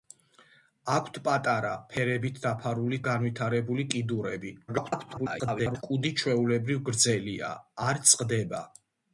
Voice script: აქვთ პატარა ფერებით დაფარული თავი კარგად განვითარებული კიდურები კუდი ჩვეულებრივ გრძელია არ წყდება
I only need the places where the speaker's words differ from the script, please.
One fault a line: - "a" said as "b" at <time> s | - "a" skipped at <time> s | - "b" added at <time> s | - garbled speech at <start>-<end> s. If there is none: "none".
- "თავი კარგად" skipped at 3.0 s
- garbled speech at 4.7-5.8 s